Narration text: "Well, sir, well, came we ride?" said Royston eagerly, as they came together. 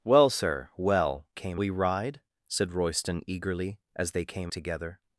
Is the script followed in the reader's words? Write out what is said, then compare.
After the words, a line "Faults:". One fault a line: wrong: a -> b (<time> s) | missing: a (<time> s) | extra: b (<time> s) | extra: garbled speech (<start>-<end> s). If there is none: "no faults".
"Well, sir, well, came we ride?" said Royston eagerly, as they came together.
Faults:
no faults